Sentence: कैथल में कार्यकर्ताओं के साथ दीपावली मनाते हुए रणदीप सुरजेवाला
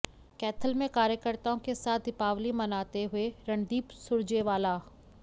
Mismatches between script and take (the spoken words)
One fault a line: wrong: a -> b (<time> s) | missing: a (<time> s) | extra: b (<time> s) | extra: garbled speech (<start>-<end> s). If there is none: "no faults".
no faults